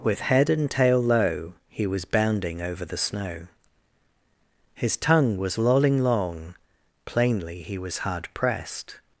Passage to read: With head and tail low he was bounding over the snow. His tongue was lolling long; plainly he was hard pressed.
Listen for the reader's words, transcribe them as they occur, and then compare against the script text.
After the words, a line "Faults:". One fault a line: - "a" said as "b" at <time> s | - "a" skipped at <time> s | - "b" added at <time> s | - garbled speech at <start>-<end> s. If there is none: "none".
With head and tail low he was bounding over the snow. His tongue was lolling long; plainly he was hard pressed.
Faults:
none